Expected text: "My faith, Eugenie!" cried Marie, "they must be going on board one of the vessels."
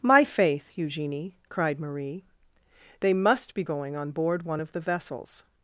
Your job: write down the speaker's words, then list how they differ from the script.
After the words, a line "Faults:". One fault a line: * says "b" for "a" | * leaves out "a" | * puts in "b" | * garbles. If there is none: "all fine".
"My faith, Eugenie!" cried Marie, "they must be going on board one of the vessels."
Faults:
all fine